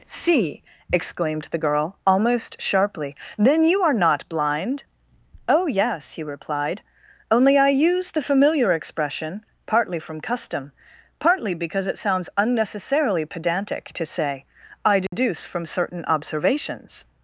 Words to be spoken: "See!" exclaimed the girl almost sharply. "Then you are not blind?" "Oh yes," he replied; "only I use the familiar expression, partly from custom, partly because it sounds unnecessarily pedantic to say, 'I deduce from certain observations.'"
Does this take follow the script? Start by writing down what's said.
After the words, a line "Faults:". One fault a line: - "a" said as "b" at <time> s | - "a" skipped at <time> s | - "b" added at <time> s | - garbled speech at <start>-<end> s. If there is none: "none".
"See!" exclaimed the girl almost sharply. "Then you are not blind?" "Oh yes," he replied; "only I use the familiar expression, partly from custom, partly because it sounds unnecessarily pedantic to say, 'I deduce from certain observations.'"
Faults:
none